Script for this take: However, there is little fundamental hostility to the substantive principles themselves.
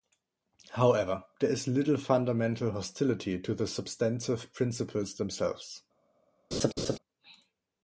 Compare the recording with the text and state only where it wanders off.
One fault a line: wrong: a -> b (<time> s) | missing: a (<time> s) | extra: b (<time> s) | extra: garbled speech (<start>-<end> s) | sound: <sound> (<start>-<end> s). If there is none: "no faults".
sound: laugh (6.5-7.0 s)